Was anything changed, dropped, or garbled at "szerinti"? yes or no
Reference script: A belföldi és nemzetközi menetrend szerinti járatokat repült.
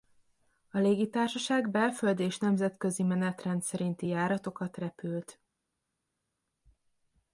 no